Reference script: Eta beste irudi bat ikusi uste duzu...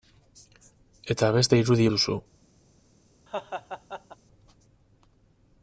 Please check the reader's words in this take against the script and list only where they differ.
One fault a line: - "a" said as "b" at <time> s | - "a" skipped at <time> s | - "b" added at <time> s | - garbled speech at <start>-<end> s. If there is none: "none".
- "bat ikusi uste" skipped at 1.9 s